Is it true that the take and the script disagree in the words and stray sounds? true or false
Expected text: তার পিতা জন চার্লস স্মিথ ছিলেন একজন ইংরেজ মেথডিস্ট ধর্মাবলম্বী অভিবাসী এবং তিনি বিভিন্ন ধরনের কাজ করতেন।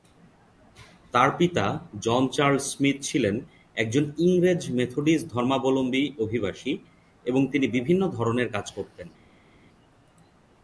false